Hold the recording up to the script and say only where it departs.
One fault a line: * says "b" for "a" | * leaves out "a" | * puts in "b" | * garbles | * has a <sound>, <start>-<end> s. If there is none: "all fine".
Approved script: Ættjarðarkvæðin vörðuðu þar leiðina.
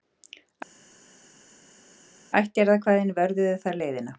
all fine